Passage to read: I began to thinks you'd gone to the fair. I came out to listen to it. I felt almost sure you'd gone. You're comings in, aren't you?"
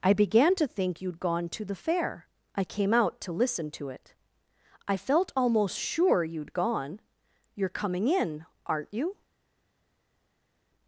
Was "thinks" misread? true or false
true